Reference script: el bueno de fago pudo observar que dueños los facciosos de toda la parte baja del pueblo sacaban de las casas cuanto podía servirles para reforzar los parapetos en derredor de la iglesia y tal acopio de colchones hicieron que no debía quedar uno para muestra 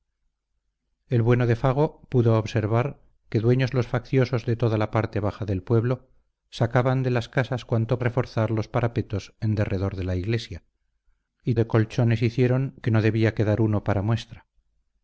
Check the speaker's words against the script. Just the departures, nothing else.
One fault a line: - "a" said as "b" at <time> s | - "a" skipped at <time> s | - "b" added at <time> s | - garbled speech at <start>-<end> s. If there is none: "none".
- "podía servirles para" skipped at 8.0 s
- "tal acopio" skipped at 11.6 s